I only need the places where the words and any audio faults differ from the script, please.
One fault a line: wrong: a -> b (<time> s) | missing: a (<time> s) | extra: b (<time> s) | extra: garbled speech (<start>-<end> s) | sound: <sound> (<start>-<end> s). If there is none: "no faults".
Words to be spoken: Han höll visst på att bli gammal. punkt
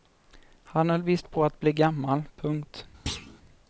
sound: thud (3.1-3.4 s)